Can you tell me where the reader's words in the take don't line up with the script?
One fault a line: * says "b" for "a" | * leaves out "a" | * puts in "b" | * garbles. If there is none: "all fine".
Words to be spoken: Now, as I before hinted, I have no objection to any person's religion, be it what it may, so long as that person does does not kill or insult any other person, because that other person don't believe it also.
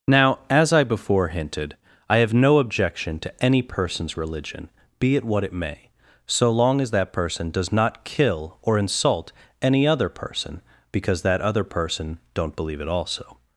* leaves out "does"